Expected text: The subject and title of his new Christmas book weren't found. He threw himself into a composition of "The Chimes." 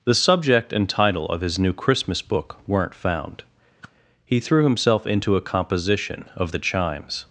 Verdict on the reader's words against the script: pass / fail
pass